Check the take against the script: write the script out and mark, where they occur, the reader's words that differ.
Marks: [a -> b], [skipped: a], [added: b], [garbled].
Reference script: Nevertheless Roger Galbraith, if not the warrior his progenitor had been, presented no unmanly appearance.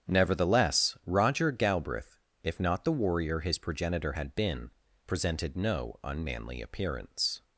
Nevertheless Roger Galbraith, if not the warrior his progenitor had been, presented no unmanly appearance.